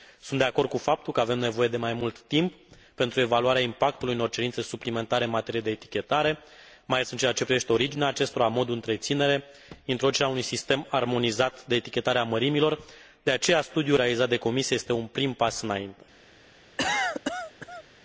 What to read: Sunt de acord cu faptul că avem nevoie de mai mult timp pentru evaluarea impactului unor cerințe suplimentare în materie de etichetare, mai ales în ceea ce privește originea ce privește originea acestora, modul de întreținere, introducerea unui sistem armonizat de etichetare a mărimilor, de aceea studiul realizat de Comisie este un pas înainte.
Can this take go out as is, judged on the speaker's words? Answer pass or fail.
fail